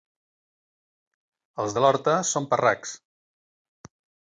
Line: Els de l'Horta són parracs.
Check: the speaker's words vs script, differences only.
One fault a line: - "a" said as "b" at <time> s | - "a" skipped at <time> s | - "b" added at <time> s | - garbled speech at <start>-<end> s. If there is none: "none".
none